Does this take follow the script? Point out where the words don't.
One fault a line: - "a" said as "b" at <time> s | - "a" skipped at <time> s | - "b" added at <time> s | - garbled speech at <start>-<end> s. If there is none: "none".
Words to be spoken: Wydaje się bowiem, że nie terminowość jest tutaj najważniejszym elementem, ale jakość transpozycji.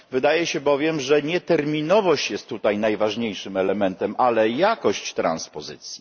none